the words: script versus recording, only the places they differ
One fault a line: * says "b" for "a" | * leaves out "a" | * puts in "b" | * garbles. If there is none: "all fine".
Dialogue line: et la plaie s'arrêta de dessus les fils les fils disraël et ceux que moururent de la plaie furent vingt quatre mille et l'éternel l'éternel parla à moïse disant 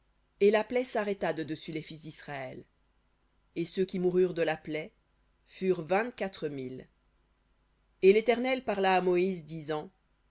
* leaves out "les fils"
* says "qui" for "que"
* leaves out "l'éternel"